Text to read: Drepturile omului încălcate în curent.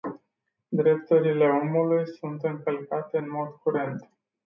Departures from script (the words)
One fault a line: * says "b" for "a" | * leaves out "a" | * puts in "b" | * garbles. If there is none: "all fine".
* puts in "sunt"
* puts in "mod"